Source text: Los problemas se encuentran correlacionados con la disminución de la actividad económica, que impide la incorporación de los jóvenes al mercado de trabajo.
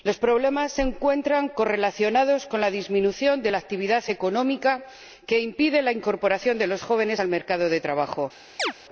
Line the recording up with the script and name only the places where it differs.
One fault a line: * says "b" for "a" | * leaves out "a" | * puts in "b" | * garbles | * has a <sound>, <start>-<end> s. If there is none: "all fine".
* has a chirp, 8.6-8.7 s